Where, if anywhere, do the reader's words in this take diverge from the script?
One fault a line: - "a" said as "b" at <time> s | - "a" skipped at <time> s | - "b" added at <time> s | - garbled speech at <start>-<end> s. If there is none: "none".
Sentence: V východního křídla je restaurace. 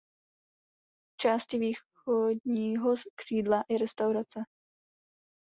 - "části" added at 1.2 s